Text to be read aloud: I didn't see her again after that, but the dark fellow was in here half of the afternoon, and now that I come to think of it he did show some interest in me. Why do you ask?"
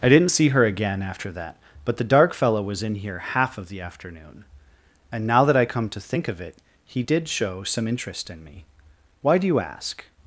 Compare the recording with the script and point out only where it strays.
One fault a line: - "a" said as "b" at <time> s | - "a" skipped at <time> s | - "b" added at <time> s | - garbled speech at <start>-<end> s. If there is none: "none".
none